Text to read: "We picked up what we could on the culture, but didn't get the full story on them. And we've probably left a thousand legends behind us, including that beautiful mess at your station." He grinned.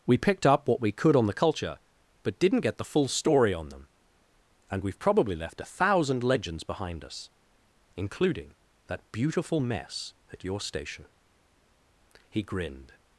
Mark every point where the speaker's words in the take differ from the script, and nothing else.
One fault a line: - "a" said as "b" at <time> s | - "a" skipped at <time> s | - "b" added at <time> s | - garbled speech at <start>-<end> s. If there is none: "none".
none